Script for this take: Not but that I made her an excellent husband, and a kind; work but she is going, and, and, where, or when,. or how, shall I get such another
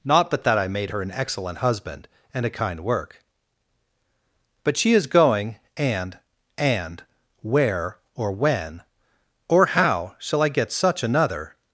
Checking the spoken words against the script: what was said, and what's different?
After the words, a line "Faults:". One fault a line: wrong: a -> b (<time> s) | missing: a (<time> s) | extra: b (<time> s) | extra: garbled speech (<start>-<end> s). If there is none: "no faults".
Not but that I made her an excellent husband, and a kind; work but she is going, and, and, where, or when,. or how, shall I get such another
Faults:
no faults